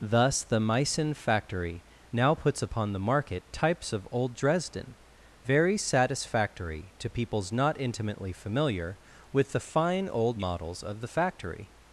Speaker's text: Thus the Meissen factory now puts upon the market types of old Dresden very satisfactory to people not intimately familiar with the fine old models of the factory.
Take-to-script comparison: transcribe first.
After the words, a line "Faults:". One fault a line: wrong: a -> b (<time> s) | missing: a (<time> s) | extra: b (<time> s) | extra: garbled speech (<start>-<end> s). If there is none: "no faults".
Thus the Meissen factory now puts upon the market types of old Dresden very satisfactory to peoples not intimately familiar with the fine old models of the factory.
Faults:
wrong: people -> peoples (7.1 s)